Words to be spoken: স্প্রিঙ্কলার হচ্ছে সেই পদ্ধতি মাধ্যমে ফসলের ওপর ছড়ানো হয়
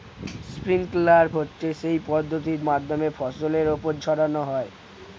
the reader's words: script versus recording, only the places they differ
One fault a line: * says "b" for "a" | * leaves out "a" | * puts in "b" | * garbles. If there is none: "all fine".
all fine